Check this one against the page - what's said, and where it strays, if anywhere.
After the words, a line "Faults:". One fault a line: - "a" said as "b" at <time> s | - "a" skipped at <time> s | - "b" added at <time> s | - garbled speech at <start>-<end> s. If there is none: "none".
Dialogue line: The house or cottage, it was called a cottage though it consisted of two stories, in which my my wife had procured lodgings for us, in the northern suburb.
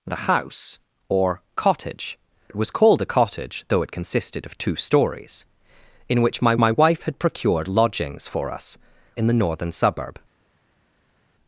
The house or cottage, it was called a cottage though it consisted of two stories, in which my my wife had procured lodgings for us, in the northern suburb.
Faults:
none